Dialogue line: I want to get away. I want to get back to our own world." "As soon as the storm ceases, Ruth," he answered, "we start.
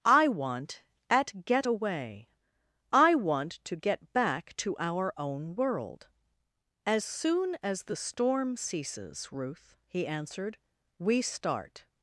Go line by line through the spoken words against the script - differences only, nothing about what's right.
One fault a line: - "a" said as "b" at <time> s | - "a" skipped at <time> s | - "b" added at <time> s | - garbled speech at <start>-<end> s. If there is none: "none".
- "to" said as "at" at 1.1 s